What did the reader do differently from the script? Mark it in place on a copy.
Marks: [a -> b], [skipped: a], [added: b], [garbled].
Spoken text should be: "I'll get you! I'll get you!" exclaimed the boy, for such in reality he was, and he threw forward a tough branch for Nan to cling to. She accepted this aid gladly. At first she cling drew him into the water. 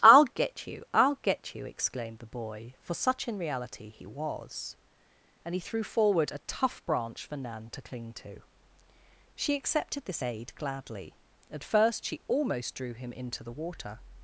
"I'll get you! I'll get you!" exclaimed the boy, for such in reality he was, and he threw forward a tough branch for Nan to cling to. She accepted this aid gladly. At first she [cling -> almost] drew him into the water.